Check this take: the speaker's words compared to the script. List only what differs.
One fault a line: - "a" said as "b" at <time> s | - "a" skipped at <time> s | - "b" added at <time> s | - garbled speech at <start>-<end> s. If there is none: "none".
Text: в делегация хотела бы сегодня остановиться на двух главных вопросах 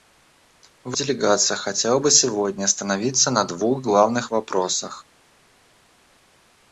none